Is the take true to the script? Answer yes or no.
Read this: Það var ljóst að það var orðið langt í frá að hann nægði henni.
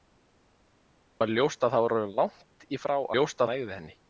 no